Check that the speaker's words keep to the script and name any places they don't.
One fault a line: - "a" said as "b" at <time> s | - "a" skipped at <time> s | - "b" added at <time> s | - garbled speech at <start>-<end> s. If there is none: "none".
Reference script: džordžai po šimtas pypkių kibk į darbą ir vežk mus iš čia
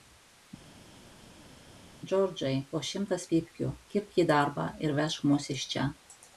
none